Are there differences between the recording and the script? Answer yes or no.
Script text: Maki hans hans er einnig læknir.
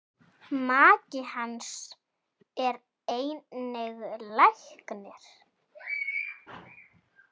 yes